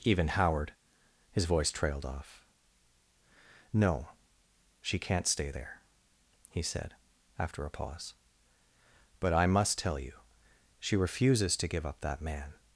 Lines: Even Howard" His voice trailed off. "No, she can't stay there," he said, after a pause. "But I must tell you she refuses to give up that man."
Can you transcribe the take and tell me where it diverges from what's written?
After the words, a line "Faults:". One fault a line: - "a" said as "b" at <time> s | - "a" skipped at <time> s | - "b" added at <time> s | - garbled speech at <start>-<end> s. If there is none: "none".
Even Howard" His voice trailed off. "No, she can't stay there," he said, after a pause. "But I must tell you she refuses to give up that man."
Faults:
none